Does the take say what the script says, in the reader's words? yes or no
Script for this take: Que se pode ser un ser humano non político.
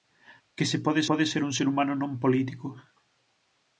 no